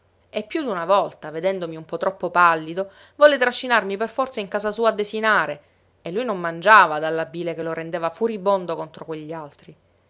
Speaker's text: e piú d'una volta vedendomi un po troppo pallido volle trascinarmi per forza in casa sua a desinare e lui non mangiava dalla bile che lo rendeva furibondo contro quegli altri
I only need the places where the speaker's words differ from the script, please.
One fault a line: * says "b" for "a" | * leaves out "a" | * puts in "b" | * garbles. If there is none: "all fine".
all fine